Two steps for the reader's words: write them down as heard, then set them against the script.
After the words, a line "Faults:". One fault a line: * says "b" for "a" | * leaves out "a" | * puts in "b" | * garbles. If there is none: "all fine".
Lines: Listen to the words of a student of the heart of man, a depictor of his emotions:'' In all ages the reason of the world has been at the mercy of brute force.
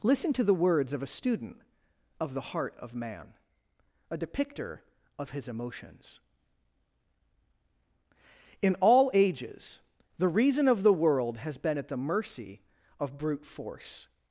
Listen to the words of a student of the heart of man, a depictor of his emotions:'' In all ages the reason of the world has been at the mercy of brute force.
Faults:
all fine